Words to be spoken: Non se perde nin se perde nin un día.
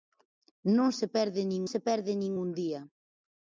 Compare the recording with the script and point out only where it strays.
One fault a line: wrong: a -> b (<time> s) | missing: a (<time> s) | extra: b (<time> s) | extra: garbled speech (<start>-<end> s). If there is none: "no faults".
no faults